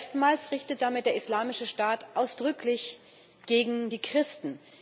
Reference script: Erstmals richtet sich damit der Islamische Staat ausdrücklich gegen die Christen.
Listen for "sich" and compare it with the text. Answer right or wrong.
wrong